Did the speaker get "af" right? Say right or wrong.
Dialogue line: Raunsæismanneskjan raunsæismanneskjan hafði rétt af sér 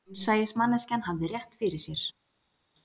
wrong